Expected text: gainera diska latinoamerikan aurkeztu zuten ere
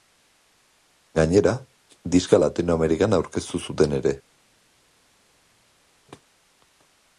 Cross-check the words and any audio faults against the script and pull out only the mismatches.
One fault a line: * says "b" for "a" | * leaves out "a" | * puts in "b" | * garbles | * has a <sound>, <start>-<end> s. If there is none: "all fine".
all fine